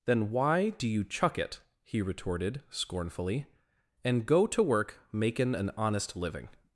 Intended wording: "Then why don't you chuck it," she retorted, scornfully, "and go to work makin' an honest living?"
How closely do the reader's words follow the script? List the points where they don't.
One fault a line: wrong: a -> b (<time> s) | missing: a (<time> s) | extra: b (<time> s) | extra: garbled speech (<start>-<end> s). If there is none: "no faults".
wrong: don't -> do (0.7 s)
wrong: she -> he (1.8 s)